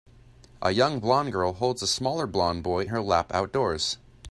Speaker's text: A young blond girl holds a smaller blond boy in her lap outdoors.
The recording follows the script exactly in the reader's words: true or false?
false